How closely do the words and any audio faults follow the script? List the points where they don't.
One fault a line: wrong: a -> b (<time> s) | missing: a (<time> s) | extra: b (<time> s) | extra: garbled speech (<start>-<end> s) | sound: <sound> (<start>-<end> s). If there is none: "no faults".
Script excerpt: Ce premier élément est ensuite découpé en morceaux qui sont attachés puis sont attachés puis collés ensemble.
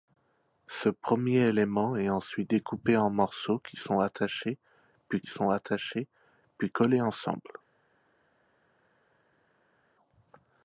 no faults